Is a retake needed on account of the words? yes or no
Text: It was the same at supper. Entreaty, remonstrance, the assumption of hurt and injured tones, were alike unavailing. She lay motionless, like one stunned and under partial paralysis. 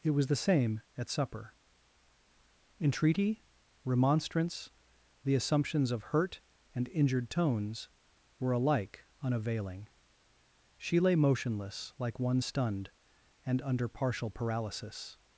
yes